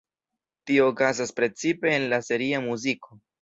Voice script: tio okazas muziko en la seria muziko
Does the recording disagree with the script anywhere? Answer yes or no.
yes